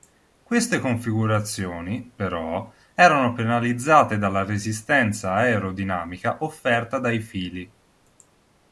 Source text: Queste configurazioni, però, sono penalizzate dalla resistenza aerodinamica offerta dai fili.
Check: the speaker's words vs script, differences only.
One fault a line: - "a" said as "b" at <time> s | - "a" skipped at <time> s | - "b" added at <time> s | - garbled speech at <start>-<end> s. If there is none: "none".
- "sono" said as "erano" at 3.0 s